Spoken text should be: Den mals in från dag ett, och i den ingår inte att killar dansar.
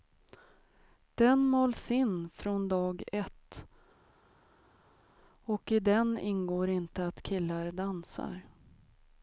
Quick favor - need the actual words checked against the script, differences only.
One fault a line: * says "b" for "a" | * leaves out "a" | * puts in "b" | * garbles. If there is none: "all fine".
all fine